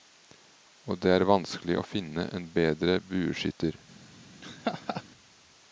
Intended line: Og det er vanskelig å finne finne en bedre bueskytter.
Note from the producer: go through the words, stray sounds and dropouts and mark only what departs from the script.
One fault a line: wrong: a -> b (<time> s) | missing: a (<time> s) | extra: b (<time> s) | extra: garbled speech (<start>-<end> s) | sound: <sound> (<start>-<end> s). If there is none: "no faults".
missing: finne (2.3 s)
sound: laugh (4.4-5.0 s)